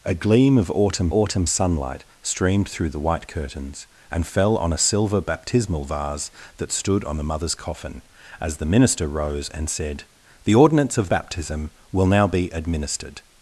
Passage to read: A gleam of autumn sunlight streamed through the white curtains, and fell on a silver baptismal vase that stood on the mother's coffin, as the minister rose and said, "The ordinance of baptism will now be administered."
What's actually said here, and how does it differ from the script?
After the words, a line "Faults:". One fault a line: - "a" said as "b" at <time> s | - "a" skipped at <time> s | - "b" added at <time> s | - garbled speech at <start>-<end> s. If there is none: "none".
A gleam of autumn autumn sunlight streamed through the white curtains, and fell on a silver baptismal vase that stood on the mother's coffin, as the minister rose and said, "The ordinance of baptism will now be administered."
Faults:
- "autumn" added at 1.1 s